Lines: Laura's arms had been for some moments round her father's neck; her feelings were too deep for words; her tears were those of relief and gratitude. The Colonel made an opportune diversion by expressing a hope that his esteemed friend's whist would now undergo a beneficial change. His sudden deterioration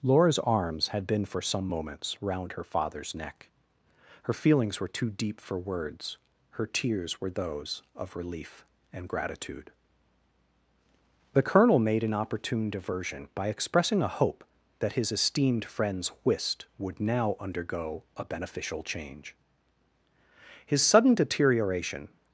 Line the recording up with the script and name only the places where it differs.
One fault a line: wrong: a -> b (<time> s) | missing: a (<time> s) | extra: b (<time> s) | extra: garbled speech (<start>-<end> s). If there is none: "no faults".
no faults